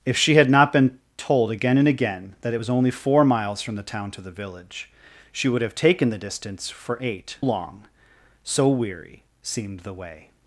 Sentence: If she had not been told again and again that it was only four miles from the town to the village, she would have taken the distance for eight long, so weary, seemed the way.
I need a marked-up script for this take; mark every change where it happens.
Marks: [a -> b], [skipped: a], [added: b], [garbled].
If she had not been told again and again that it was only four miles from the town to the village, she would have taken the distance for eight long, so weary, seemed the way.